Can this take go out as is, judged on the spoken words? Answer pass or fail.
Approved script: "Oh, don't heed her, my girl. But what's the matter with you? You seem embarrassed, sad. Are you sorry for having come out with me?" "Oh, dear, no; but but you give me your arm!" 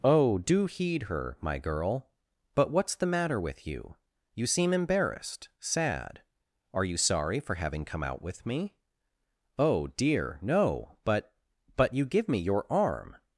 fail